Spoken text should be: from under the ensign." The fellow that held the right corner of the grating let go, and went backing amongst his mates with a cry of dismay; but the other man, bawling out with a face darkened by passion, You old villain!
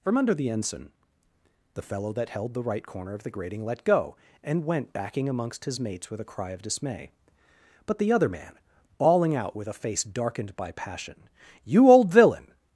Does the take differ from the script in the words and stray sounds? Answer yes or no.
no